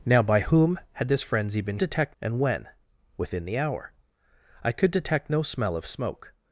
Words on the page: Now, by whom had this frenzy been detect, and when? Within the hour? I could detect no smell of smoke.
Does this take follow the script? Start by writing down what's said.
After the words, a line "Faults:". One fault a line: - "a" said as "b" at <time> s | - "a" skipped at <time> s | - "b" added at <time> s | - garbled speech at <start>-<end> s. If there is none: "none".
Now, by whom had this frenzy been detect, and when? Within the hour? I could detect no smell of smoke.
Faults:
none